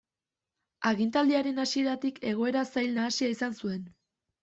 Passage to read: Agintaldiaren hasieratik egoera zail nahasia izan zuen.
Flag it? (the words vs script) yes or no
no